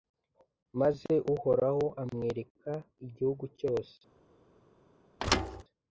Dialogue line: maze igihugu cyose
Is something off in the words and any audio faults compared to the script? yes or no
yes